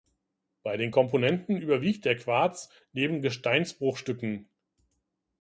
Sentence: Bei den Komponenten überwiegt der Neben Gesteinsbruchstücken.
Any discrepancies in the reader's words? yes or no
yes